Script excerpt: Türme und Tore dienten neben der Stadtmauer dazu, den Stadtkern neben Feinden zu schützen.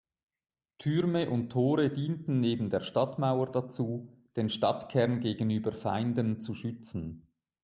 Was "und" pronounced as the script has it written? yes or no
yes